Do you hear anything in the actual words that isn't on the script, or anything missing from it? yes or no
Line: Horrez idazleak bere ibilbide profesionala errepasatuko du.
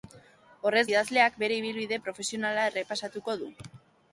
no